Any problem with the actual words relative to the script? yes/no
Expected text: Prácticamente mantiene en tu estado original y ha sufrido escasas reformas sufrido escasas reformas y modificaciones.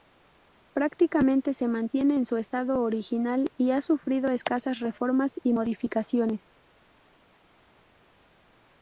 yes